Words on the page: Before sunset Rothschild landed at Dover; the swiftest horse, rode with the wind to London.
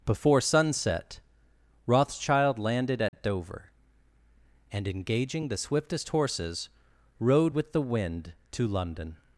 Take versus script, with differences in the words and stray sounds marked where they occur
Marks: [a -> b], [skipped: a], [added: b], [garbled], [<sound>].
Before sunset Rothschild landed at [dropout] Dover; [added: and engaging] the swiftest [horse, -> horses] rode with the wind to London.